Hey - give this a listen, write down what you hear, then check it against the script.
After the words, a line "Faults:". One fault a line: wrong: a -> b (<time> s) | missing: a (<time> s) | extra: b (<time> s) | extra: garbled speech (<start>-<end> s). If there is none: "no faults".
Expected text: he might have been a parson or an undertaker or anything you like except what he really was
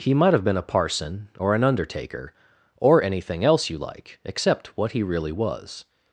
he might have been a parson or an undertaker or anything else you like except what he really was
Faults:
extra: else (3.4 s)